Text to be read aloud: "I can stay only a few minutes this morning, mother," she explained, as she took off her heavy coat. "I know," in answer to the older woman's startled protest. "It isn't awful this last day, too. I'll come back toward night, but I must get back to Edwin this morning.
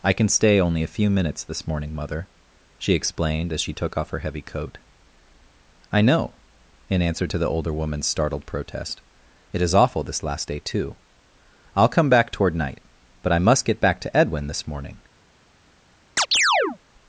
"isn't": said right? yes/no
no